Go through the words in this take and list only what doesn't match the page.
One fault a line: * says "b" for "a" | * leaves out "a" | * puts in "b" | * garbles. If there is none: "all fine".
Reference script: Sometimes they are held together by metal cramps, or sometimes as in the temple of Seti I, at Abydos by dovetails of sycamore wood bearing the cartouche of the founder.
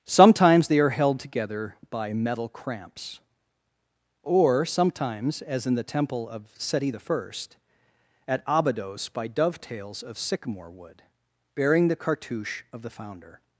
all fine